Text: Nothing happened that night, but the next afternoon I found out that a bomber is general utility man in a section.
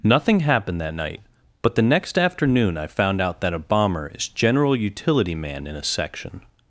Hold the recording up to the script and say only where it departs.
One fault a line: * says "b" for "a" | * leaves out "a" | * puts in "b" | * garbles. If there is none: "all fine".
all fine